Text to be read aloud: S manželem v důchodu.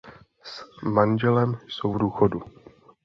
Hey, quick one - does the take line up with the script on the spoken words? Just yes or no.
no